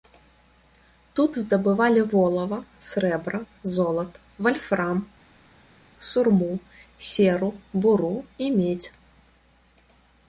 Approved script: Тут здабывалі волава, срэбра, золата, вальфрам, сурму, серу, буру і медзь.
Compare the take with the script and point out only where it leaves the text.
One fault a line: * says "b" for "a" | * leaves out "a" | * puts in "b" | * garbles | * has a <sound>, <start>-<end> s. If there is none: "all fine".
all fine